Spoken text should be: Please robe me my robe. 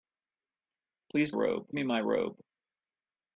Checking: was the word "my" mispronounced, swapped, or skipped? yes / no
no